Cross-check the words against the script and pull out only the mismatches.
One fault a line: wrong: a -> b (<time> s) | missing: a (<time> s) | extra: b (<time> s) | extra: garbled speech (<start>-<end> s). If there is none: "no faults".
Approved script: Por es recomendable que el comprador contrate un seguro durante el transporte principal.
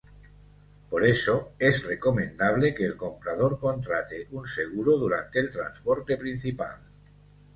extra: eso (1.1 s)